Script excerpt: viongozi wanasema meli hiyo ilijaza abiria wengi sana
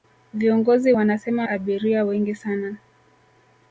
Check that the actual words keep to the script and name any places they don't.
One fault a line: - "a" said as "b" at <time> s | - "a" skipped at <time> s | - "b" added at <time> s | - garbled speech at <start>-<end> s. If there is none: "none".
- "meli hiyo ilijaza" skipped at 1.5 s